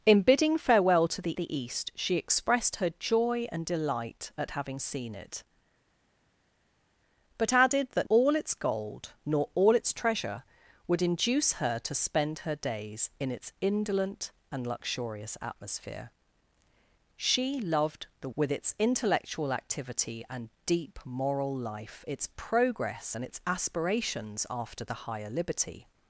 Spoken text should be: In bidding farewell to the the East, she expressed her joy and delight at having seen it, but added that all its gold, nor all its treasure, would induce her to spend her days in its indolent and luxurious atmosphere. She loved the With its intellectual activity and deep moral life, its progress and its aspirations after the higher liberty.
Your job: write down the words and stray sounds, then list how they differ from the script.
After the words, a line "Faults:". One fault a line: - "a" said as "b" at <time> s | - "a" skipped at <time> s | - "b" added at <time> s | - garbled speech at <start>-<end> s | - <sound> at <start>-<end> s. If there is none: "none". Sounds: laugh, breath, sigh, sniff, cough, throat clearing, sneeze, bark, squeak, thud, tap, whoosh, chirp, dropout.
In bidding farewell to the the East, she expressed her joy and delight at having seen it, but added that all its gold, nor all its treasure, would induce her to spend her days in its indolent and luxurious atmosphere. She loved the With its intellectual activity and deep moral life, its progress and its aspirations after the higher liberty.
Faults:
none